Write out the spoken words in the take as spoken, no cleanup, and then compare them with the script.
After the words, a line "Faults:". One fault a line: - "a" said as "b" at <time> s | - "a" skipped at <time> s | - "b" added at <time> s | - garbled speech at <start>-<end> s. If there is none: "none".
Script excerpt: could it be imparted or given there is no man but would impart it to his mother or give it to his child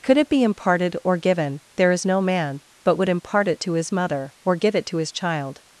could it be imparted or given there is no man but would impart it to his mother or give it to his child
Faults:
none